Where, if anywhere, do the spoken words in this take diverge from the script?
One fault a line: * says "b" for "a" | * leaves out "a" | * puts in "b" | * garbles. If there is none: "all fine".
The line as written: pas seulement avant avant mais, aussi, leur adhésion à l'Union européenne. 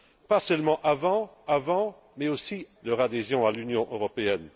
all fine